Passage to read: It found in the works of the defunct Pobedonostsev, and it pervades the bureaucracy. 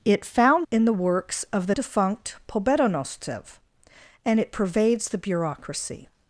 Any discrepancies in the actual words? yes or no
no